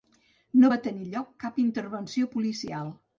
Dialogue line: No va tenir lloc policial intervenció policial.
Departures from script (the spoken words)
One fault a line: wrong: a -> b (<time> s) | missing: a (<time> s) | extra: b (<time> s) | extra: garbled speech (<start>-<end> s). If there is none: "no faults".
wrong: policial -> cap (1.5 s)